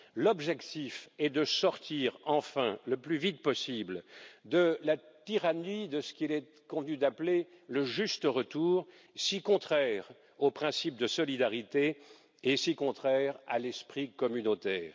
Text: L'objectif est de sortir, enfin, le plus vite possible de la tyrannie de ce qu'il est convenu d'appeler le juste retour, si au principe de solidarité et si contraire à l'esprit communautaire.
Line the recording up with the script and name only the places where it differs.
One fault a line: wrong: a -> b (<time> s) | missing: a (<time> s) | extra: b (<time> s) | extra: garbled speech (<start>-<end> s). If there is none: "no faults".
extra: contraire (9.4 s)